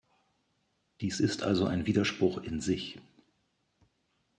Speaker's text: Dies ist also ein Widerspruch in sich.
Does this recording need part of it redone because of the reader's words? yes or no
no